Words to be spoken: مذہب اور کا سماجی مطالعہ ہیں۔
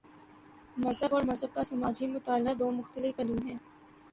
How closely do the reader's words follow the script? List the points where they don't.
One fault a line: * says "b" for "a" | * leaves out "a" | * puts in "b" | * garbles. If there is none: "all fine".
* puts in "مذہب"
* puts in "دو مختلف علوم"